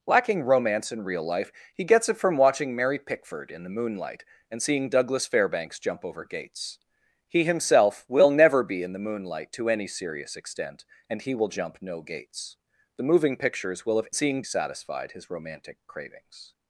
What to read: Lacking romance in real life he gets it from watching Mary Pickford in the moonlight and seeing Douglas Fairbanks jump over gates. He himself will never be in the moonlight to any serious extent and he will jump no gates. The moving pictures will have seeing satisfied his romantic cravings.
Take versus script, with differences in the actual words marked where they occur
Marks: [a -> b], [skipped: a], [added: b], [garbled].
Lacking romance in real life he gets it from watching Mary Pickford in the moonlight and seeing Douglas Fairbanks jump over gates. He himself will never be in the moonlight to any serious extent and he will jump no gates. The moving pictures will have seeing satisfied his romantic cravings.